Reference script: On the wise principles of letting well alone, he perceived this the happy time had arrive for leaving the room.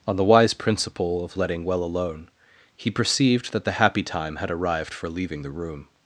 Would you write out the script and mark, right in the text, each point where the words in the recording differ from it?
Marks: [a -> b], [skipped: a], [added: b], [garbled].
On the wise [principles -> principle] of letting well alone, he perceived [this -> that] the happy time had [arrive -> arrived] for leaving the room.